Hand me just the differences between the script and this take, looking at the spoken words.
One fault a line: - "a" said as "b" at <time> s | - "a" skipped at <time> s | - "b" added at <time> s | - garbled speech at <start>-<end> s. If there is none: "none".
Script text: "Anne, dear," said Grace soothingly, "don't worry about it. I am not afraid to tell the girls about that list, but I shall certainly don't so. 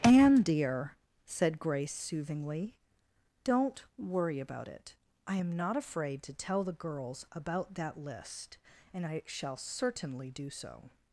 - "but" said as "and" at 8.9 s
- "don't" said as "do" at 10.3 s